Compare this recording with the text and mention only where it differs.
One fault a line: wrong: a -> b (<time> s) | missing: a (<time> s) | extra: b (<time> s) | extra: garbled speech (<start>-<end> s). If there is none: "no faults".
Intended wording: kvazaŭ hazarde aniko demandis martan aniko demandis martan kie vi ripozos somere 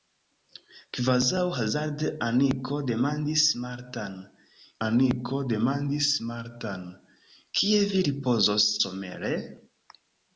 no faults